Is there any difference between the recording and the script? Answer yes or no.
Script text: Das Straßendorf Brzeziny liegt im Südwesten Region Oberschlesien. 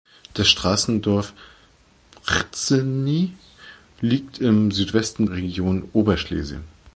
no